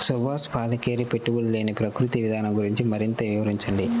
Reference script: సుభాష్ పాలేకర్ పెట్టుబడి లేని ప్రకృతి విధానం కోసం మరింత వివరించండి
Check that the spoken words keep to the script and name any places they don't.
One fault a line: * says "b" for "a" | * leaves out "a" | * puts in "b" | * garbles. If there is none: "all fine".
* says "గురించి" for "కోసం"